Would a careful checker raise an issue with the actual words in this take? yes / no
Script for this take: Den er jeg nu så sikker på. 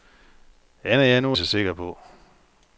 no